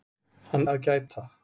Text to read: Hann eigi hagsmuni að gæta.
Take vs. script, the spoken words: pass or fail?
fail